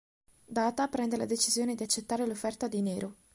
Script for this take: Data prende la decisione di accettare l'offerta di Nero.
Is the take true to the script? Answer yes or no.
yes